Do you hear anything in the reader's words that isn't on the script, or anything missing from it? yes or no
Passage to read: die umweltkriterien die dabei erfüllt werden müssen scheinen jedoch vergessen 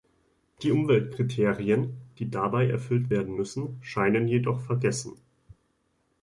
no